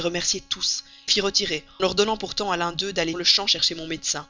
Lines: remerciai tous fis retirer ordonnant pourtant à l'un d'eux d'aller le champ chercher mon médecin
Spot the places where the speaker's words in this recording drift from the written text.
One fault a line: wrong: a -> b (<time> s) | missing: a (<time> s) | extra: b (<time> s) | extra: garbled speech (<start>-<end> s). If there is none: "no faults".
no faults